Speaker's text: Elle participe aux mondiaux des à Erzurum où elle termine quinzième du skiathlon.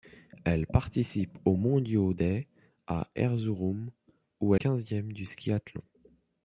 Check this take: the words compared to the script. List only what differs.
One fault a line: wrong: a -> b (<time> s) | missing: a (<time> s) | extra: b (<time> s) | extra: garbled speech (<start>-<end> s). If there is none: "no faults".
missing: elle termine (4.5 s)